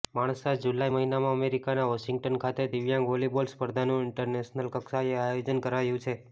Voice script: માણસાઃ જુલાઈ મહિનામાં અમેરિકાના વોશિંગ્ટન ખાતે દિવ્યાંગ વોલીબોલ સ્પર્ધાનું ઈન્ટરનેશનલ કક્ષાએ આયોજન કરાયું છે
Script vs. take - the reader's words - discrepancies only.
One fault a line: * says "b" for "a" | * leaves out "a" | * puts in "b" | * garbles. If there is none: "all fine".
all fine